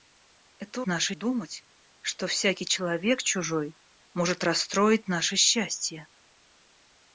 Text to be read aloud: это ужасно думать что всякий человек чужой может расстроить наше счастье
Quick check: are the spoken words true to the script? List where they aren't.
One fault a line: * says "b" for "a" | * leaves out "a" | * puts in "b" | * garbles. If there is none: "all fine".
* says "наше" for "ужасно"